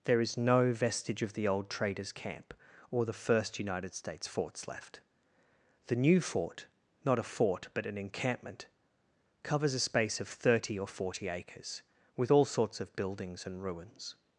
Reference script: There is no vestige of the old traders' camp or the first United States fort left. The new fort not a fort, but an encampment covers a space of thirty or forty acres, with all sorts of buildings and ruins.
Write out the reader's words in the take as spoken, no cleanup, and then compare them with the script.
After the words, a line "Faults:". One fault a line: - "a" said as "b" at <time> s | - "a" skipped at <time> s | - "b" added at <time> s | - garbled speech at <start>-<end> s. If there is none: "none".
There is no vestige of the old traders' camp or the first United States forts left. The new fort not a fort, but an encampment covers a space of thirty or forty acres, with all sorts of buildings and ruins.
Faults:
- "fort" said as "forts" at 4.3 s